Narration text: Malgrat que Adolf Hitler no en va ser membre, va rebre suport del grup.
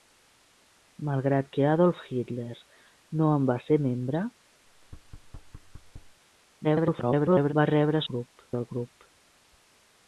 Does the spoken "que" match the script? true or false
true